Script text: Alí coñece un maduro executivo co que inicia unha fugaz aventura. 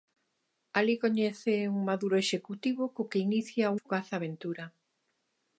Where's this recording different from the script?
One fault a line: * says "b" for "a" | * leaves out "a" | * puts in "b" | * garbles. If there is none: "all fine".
* leaves out "unha"